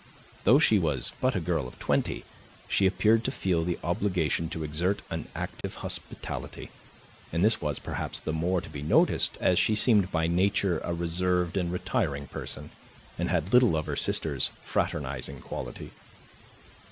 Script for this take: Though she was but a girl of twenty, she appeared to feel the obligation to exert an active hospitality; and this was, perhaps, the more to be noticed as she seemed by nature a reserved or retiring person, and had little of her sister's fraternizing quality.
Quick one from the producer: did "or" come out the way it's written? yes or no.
no